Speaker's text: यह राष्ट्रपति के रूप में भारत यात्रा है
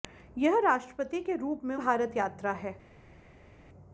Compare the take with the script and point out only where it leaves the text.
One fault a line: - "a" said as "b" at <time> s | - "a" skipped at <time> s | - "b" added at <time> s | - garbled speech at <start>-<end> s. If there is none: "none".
none